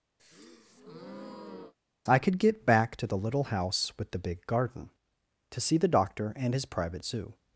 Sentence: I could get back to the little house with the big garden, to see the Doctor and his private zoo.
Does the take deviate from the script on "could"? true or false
false